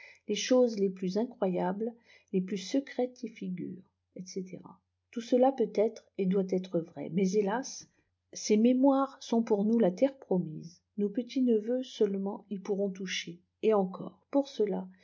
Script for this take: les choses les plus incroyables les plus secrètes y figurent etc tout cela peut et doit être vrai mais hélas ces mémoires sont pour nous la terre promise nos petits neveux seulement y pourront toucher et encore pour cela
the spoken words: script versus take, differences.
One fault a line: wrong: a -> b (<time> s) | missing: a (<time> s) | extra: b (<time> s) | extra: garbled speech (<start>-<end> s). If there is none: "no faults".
extra: être (5.8 s)